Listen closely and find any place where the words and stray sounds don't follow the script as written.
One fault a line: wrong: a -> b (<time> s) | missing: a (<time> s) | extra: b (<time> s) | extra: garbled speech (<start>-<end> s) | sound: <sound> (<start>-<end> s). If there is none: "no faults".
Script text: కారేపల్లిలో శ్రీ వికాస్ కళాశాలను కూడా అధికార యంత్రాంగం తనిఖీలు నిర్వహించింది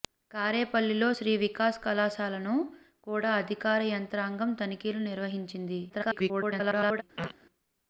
extra: garbled speech (5.9-7.0 s)
sound: throat clearing (7.2-7.4 s)